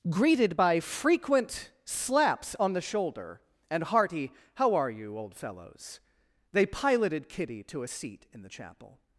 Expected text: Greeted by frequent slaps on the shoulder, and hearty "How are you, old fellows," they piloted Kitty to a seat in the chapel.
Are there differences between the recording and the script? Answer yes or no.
no